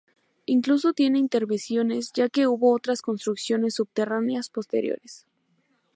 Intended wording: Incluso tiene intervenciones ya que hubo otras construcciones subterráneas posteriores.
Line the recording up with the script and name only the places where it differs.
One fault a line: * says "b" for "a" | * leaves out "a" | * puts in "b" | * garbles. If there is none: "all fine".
all fine